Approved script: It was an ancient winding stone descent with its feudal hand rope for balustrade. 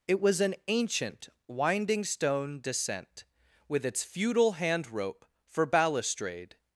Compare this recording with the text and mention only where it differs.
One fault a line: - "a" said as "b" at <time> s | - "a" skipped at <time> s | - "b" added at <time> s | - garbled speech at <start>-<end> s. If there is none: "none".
none